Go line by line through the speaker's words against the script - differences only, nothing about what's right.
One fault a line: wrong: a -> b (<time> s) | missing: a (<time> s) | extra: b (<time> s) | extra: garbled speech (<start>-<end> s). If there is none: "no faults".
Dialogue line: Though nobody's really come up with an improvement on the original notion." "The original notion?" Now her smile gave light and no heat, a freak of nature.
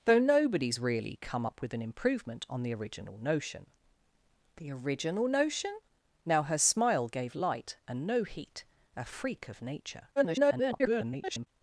extra: garbled speech (10.2-11.5 s)